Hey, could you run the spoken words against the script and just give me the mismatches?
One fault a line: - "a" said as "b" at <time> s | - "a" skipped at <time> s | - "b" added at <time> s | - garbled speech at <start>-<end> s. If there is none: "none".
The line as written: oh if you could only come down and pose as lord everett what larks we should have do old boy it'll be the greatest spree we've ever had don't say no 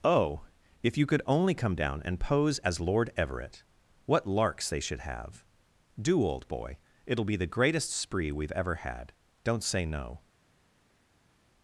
- "we" said as "they" at 4.7 s